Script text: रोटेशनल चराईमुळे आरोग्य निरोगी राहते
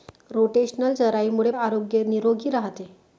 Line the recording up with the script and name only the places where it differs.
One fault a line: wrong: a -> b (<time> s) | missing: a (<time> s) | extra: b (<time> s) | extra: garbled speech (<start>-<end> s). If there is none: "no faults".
no faults